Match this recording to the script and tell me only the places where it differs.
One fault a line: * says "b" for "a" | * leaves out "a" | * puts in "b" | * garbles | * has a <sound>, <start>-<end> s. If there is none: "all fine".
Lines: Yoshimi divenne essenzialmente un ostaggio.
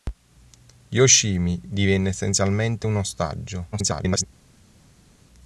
* garbles